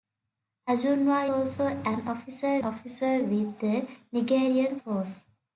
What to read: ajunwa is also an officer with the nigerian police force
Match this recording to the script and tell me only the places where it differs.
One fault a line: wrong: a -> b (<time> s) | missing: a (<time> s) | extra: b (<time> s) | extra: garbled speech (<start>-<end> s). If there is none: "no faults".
missing: is (1.3 s)
extra: officer (2.6 s)
missing: police (4.8 s)